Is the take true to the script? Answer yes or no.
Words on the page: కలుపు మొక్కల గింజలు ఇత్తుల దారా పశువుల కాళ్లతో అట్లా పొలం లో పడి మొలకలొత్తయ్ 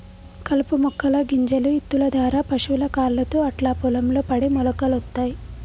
yes